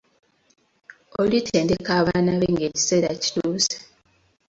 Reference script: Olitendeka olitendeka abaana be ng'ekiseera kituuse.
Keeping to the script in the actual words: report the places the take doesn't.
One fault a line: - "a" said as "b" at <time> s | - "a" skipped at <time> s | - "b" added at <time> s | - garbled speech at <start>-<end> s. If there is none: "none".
- "olitendeka" skipped at 1.9 s